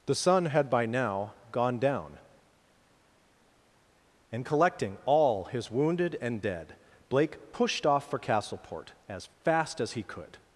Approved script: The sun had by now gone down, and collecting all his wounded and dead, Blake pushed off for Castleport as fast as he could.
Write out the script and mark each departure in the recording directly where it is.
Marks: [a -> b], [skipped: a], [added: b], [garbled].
The sun had by now gone down, and collecting all his wounded and dead, Blake pushed off for Castleport as fast as he could.